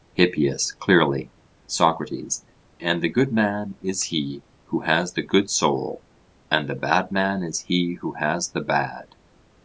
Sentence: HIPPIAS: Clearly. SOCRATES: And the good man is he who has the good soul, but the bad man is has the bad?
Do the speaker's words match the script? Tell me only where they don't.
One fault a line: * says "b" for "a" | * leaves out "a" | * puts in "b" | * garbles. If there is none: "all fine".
* says "and" for "but"
* puts in "he who"